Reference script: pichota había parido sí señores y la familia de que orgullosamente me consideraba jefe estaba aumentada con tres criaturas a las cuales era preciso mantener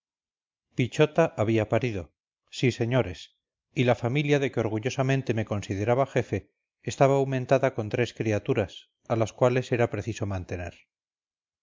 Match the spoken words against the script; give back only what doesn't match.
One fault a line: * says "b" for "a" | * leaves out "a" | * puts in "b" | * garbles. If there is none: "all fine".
all fine